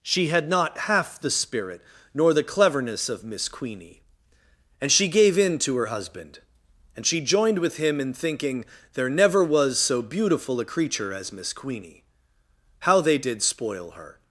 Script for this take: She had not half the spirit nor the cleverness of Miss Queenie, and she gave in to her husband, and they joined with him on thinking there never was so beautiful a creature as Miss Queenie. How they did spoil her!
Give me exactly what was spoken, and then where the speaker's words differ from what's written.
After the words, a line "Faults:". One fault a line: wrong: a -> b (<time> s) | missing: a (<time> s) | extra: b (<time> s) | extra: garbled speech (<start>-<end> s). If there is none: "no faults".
She had not half the spirit nor the cleverness of Miss Queenie, and she gave in to her husband, and she joined with him in thinking there never was so beautiful a creature as Miss Queenie. How they did spoil her!
Faults:
wrong: they -> she (7.0 s)
wrong: on -> in (8.0 s)